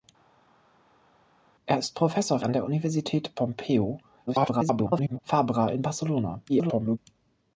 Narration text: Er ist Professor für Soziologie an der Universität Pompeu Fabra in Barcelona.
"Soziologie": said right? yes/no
no